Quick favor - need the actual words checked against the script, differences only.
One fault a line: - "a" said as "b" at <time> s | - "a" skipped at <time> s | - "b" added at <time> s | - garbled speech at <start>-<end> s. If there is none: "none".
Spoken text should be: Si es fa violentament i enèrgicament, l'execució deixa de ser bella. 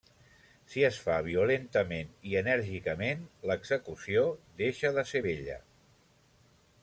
none